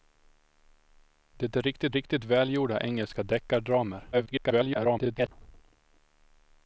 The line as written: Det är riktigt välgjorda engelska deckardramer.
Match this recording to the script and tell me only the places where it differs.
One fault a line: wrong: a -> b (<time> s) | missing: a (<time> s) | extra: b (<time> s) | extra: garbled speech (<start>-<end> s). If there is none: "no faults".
extra: riktigt (1.9 s)
extra: garbled speech (4.1-5.3 s)